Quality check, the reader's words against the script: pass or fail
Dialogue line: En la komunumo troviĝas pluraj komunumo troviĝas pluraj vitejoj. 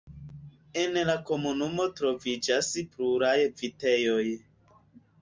fail